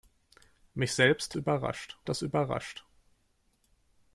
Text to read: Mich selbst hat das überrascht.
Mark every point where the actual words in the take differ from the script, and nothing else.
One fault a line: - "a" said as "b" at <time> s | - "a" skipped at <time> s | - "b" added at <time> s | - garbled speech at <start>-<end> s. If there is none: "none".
- "hat" said as "überrascht" at 1.3 s